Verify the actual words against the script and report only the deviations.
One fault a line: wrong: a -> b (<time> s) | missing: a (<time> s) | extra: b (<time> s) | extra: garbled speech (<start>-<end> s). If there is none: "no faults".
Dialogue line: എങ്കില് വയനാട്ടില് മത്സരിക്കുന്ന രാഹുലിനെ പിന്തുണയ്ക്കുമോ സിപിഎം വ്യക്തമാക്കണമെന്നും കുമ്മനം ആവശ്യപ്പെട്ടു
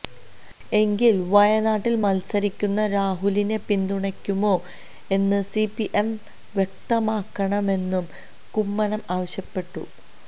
extra: എന്ന് (5.1 s)